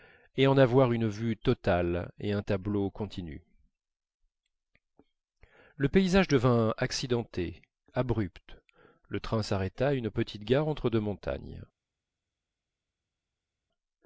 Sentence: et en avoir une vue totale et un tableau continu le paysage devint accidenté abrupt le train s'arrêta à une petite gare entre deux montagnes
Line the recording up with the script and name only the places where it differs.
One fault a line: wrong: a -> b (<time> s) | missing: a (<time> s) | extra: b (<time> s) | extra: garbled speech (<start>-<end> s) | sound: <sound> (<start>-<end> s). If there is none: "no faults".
no faults